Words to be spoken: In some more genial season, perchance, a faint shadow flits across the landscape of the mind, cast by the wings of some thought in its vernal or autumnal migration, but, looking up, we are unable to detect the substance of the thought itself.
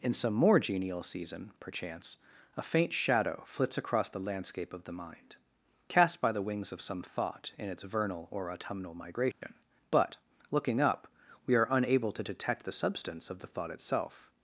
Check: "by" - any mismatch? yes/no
no